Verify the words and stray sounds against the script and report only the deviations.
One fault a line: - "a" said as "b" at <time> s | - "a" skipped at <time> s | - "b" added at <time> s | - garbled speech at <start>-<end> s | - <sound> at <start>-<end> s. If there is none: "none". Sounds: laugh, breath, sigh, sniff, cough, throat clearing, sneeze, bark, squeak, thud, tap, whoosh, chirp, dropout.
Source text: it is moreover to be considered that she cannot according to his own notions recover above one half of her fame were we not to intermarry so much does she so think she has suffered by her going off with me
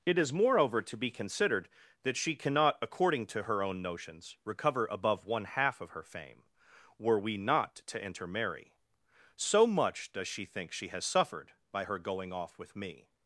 - "his" said as "her" at 3.4 s
- "so" skipped at 10.4 s